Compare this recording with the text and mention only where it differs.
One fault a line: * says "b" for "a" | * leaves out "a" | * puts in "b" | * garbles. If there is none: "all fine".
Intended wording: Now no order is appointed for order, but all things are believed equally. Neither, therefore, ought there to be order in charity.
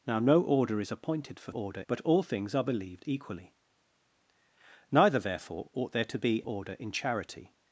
all fine